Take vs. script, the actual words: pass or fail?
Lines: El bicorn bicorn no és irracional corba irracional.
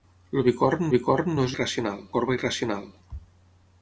pass